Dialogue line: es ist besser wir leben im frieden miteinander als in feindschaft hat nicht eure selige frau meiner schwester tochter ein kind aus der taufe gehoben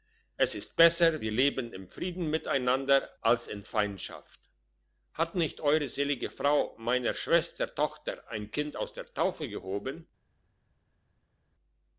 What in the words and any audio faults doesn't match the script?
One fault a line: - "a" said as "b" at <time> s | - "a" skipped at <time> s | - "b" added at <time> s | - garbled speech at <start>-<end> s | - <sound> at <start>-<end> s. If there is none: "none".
none